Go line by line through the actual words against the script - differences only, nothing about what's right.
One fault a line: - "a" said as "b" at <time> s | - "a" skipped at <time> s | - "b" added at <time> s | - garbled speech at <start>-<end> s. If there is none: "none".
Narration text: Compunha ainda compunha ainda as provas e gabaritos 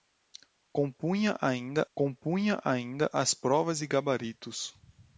none